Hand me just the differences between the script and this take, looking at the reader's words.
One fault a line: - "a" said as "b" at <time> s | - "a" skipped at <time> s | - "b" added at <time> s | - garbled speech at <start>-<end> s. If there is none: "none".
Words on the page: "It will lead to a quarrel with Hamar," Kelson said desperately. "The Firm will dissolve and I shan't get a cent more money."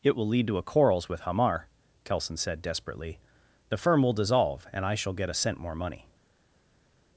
- "quarrel" said as "quarrels" at 0.6 s
- "shan't" said as "shall" at 4.9 s